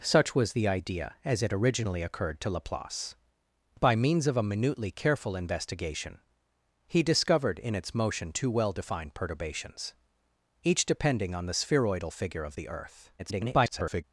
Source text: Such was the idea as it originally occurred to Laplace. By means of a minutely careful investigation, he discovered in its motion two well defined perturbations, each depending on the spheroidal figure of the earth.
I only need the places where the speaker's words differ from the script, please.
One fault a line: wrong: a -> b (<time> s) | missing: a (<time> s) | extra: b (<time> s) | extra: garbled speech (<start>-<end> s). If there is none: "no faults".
extra: garbled speech (13.2-14.0 s)